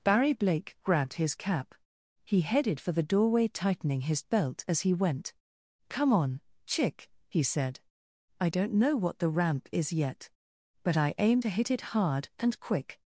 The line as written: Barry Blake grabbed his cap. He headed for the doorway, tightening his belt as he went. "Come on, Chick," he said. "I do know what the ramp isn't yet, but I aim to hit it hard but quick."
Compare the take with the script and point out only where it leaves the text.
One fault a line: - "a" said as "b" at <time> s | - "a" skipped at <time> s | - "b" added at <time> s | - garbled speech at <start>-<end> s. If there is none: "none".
- "do" said as "don't" at 8.5 s
- "isn't" said as "is" at 9.7 s
- "but" said as "and" at 12.4 s